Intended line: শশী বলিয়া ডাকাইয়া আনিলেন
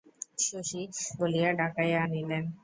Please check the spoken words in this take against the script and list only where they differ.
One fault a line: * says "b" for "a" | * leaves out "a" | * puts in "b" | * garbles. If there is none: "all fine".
all fine